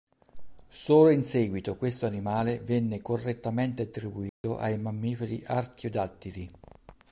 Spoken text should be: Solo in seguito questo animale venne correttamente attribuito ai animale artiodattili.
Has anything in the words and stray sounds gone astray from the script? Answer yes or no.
yes